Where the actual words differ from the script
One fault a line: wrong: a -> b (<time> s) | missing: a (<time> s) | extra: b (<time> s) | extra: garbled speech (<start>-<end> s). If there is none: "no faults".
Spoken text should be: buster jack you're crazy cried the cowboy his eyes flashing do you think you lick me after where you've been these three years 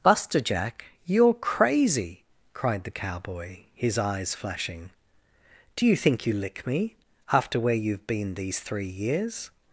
no faults